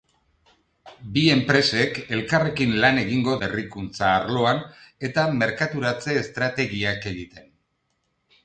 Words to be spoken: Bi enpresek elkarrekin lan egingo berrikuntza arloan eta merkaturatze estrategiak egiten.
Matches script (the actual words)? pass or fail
pass